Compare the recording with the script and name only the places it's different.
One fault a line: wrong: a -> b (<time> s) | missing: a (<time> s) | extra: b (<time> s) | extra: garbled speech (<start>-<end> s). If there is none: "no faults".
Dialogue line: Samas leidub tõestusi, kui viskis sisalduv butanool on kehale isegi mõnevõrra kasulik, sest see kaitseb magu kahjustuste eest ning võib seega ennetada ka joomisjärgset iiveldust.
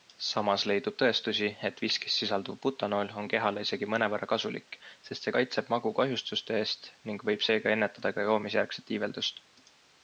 wrong: kui -> et (1.7 s)